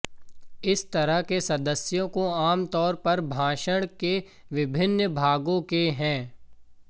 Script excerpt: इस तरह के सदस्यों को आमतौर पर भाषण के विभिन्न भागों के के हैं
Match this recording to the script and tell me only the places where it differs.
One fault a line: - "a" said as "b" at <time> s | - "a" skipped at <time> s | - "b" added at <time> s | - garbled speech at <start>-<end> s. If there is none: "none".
- "के" skipped at 5.9 s